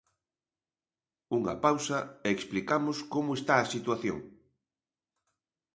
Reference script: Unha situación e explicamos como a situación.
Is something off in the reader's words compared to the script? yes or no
yes